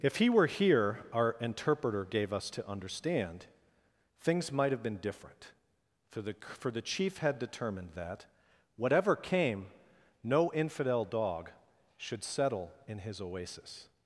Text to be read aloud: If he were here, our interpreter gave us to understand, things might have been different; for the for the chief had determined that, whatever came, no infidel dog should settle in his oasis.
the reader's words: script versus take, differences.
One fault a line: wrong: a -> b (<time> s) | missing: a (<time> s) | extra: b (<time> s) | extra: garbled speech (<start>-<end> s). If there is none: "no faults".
no faults